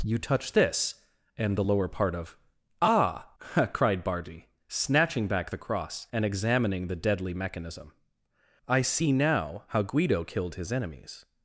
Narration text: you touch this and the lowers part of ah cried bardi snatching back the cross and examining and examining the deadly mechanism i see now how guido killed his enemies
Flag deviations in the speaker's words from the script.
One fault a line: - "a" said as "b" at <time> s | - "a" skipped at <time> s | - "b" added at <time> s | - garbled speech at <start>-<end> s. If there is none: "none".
- "lowers" said as "lower" at 1.6 s
- "and examining" skipped at 6.9 s